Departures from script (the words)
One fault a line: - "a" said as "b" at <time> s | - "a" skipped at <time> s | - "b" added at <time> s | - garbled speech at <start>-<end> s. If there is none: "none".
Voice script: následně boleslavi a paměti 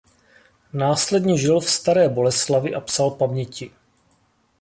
- "žil v staré" added at 1.4 s
- "psal" added at 2.8 s